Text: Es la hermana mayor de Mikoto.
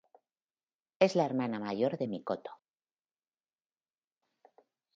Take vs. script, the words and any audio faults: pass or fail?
pass